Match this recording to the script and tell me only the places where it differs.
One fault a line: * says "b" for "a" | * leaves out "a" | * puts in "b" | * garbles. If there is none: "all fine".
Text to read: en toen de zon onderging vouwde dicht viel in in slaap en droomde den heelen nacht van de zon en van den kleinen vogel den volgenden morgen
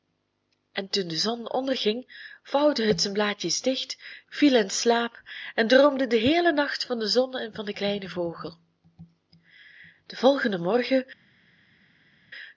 * puts in "het zijn blaadjes"
* leaves out "in"